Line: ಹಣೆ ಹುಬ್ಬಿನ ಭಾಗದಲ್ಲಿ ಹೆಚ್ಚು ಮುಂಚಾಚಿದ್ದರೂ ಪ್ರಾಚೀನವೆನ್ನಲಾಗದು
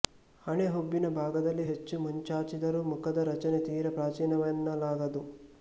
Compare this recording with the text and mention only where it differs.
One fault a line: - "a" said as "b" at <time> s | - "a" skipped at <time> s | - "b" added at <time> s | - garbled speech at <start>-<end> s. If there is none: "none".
- "ಮುಖದ ರಚನೆ ತೀರ" added at 2.9 s